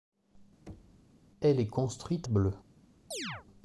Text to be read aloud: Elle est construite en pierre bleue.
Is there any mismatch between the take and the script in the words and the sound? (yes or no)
yes